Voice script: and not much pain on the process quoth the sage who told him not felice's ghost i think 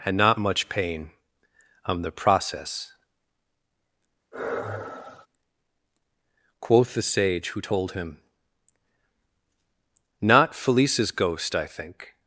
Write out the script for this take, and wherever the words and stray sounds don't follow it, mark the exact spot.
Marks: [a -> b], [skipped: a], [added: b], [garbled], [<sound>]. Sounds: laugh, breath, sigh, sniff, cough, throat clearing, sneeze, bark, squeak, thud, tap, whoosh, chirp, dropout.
and not much pain on the process [sigh] quoth the sage who told him not felice's ghost i think